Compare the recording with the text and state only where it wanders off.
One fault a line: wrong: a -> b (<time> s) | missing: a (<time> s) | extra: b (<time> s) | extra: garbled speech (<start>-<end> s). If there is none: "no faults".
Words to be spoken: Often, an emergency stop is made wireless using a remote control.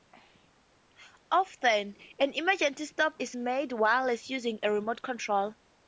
no faults